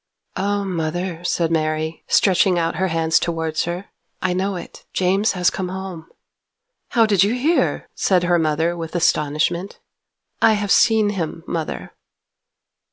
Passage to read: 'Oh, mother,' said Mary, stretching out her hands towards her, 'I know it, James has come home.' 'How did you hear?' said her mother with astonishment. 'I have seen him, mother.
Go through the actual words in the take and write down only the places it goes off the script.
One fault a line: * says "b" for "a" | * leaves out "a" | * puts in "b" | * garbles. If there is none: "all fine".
all fine